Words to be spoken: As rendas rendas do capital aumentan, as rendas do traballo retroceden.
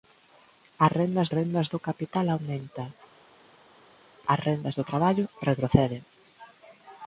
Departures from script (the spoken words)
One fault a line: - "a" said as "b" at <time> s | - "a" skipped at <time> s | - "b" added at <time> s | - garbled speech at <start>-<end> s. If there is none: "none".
none